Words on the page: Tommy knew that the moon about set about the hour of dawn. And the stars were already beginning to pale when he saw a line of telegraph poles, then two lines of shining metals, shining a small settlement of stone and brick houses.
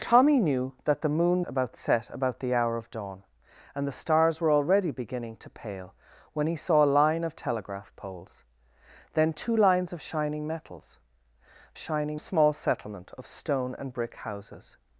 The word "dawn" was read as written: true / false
true